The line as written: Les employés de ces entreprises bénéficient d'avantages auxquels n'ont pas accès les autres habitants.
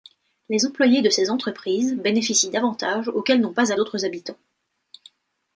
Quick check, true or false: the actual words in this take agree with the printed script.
false